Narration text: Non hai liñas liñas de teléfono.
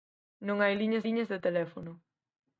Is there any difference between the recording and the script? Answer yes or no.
no